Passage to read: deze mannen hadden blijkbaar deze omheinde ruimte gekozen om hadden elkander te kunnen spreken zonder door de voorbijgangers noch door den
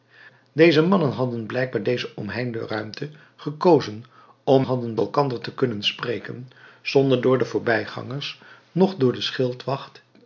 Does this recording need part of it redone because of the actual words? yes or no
no